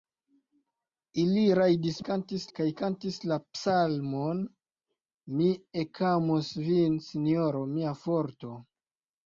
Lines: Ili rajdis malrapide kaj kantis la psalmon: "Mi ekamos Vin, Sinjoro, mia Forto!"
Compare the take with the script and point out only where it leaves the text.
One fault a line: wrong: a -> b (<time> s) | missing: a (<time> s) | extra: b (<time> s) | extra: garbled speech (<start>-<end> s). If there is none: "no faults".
wrong: malrapide -> kantis (2.1 s)